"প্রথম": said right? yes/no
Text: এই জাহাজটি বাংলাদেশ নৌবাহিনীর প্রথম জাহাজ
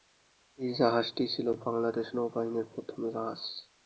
yes